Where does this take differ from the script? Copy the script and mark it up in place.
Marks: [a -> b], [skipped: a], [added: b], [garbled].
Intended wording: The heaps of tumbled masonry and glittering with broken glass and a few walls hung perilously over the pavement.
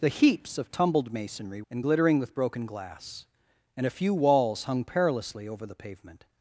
The heaps of tumbled masonry and glittering with broken glass and a few walls hung perilously over the pavement.